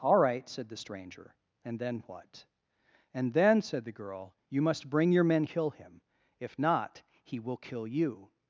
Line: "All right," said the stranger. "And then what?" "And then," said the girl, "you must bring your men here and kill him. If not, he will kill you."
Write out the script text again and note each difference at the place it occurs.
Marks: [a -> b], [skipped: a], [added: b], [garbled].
"All right," said the stranger. "And then what?" "And then," said the girl, "you must bring your men [skipped: here and] kill him. If not, he will kill you."